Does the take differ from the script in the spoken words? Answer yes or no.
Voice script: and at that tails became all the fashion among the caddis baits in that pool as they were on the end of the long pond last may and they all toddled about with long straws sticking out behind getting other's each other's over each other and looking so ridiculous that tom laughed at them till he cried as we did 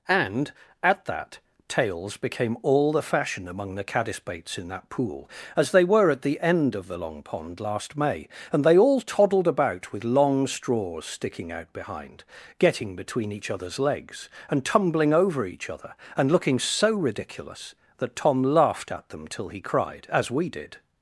yes